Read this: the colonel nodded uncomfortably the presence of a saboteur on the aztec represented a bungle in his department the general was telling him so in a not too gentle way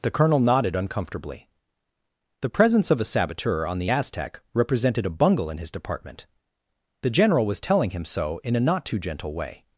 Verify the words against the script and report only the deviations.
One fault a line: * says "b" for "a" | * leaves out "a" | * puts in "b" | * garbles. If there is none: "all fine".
all fine